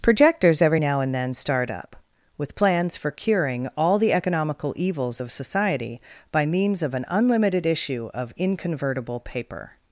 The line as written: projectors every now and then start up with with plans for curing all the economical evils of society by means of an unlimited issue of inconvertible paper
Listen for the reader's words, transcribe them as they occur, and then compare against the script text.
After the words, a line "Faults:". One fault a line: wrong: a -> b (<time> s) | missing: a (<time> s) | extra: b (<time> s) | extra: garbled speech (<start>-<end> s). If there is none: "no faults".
projectors every now and then start up with plans for curing all the economical evils of society by means of an unlimited issue of inconvertible paper
Faults:
missing: with (2.6 s)